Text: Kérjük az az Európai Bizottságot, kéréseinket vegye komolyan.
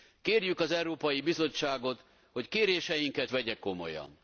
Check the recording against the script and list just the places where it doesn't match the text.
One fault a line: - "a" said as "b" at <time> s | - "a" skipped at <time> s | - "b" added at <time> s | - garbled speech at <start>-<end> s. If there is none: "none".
- "az" skipped at 0.7 s
- "hogy" added at 2.3 s